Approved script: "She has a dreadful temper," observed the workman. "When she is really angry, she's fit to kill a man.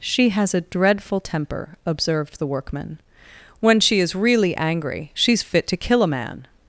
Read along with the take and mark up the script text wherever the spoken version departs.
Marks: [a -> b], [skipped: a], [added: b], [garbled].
"She has a dreadful temper," observed the workman. "When she is really angry, she's fit to kill a man.